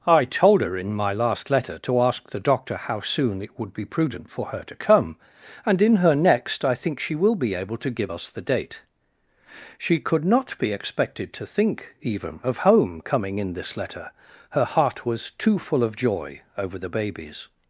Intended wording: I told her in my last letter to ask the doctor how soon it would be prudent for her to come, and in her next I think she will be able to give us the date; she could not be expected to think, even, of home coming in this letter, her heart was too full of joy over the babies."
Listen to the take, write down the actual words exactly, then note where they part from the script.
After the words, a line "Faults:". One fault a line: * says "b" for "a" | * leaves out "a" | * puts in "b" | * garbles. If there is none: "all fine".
I told her in my last letter to ask the doctor how soon it would be prudent for her to come, and in her next I think she will be able to give us the date; she could not be expected to think, even, of home coming in this letter, her heart was too full of joy over the babies."
Faults:
all fine